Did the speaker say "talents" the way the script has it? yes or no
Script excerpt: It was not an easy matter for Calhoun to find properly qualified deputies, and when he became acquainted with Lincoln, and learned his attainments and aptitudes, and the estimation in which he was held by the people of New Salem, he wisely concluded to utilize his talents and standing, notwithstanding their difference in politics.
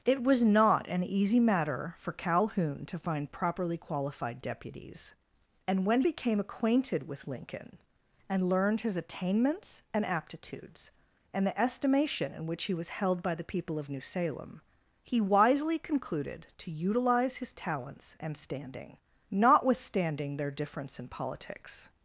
yes